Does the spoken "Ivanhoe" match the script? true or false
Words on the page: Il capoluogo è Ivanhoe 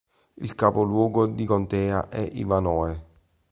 true